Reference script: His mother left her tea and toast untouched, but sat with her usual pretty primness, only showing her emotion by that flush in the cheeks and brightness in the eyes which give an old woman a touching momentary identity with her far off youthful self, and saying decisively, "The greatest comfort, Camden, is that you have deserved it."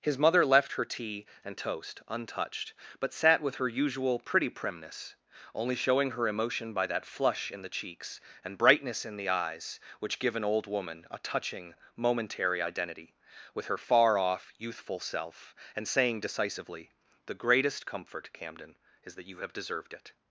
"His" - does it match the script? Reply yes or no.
yes